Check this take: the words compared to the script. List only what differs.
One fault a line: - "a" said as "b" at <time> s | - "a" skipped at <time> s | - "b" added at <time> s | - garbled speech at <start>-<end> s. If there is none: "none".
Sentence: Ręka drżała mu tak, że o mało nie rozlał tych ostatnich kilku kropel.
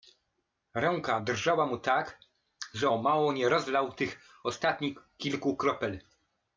none